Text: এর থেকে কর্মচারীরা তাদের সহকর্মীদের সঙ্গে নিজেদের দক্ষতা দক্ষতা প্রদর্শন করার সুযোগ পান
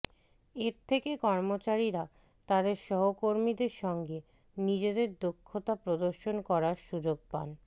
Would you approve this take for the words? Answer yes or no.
no